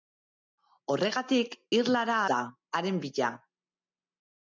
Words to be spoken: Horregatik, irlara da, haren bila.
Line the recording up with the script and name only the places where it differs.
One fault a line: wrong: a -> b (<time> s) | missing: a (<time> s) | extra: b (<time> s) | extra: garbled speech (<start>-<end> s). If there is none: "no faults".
no faults